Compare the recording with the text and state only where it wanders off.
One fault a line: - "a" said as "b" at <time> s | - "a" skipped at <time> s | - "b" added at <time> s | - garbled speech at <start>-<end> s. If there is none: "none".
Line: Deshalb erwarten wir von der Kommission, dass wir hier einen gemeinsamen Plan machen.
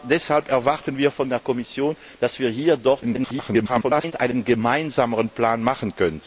- garbled speech at 3.0-4.1 s